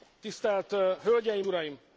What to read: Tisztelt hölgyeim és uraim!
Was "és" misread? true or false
true